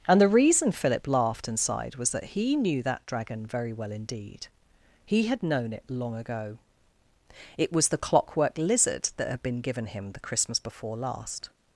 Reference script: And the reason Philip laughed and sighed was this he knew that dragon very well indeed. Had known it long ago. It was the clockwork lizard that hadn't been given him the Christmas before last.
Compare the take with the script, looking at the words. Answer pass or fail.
fail